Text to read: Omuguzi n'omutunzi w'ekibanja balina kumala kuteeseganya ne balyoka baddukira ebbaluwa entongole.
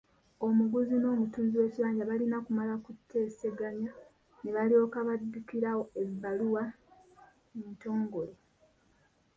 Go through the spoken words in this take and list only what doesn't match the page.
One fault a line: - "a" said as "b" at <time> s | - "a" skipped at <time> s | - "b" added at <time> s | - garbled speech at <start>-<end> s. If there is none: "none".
none